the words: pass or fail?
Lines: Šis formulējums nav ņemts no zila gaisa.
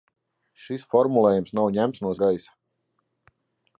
fail